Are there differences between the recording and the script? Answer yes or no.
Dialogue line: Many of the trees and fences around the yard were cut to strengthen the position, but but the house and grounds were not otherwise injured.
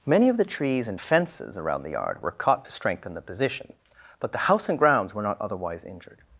yes